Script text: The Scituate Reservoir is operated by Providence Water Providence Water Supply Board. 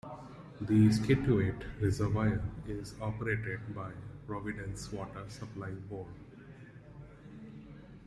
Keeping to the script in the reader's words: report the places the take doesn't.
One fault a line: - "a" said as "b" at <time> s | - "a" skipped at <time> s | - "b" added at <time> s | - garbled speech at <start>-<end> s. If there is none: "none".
- "Providence Water" skipped at 5.3 s